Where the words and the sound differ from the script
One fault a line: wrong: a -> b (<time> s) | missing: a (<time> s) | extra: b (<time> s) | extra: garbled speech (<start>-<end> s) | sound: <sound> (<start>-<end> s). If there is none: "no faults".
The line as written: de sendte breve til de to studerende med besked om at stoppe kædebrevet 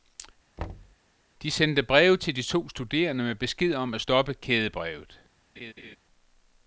sound: thud (0.6-1.0 s)
sound: laugh (5.6-6.0 s)